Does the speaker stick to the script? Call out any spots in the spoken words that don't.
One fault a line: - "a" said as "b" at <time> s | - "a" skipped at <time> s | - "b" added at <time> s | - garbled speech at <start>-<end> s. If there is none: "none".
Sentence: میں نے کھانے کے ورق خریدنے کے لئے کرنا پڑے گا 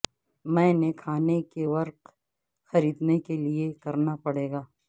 none